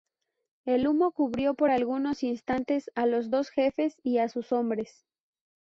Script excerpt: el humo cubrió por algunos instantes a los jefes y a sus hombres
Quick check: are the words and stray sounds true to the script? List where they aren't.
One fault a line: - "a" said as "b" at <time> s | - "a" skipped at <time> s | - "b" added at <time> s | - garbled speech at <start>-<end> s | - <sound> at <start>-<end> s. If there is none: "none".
- "dos" added at 3.3 s